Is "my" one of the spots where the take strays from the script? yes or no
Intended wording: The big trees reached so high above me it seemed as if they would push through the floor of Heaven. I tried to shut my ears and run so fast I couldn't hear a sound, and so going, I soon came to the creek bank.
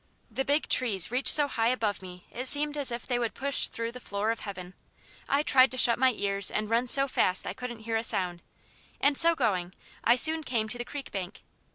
no